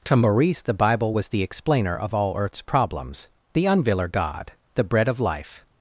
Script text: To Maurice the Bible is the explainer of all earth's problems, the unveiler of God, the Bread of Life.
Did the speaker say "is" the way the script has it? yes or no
no